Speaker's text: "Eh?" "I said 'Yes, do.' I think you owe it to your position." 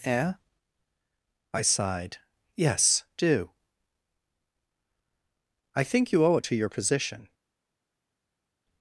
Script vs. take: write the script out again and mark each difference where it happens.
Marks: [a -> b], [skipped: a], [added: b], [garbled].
"Eh?" "I [said -> sighed] 'Yes, do.' I think you owe it to your position."